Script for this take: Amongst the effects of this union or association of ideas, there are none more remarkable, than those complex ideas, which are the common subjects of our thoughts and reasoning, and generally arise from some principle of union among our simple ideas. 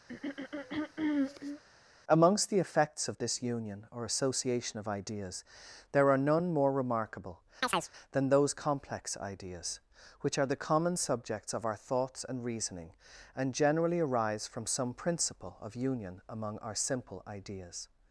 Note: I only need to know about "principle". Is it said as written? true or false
true